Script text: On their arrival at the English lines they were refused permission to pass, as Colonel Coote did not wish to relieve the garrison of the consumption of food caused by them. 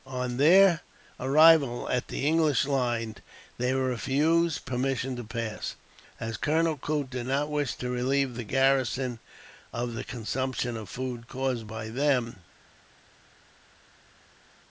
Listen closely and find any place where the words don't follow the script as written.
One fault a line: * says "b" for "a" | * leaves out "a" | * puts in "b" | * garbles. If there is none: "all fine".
all fine